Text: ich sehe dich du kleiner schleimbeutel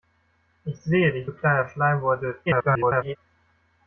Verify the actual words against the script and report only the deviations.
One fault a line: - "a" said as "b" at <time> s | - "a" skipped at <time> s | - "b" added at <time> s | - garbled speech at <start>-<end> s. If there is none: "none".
- garbled speech at 2.5-3.2 s